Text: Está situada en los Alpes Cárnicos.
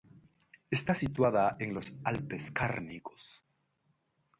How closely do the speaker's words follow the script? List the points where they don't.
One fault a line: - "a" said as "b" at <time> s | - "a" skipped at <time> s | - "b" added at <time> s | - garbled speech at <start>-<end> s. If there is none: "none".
none